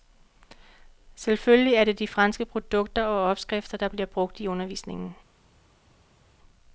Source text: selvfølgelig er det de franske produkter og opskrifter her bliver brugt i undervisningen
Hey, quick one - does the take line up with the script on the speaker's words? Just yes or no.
no